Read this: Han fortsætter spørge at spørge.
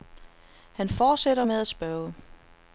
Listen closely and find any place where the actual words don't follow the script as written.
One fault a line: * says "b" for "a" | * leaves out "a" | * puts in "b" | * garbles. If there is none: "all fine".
* says "med" for "spørge"